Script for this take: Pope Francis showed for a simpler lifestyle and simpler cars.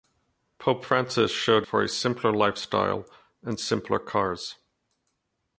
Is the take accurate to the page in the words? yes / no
yes